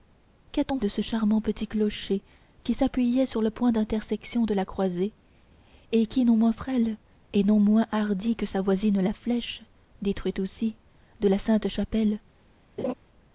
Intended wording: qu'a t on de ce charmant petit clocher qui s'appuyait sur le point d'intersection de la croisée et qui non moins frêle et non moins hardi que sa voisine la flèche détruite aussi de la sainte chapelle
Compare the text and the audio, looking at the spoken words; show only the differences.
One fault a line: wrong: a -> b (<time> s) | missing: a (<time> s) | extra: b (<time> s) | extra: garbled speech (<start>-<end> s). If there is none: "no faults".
no faults